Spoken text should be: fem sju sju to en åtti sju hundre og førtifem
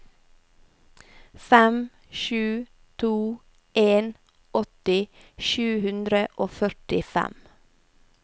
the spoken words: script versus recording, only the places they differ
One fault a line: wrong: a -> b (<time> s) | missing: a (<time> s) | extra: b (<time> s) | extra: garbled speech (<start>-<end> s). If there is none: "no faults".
missing: sju (2.6 s)